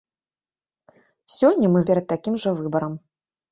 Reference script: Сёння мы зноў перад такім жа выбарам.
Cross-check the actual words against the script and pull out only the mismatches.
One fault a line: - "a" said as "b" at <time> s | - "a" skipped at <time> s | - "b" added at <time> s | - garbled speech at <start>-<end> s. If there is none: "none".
- "зноў" skipped at 1.8 s